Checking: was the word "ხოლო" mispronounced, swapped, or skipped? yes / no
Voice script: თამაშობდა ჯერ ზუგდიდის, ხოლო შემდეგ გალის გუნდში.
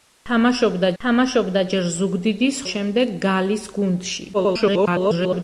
yes